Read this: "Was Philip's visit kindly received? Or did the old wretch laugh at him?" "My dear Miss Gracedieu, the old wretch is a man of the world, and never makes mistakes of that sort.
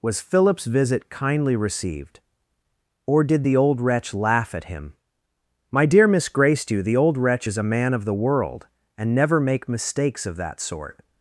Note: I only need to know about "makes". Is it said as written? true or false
false